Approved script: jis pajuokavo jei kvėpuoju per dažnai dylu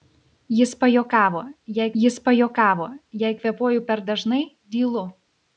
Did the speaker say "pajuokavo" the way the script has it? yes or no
yes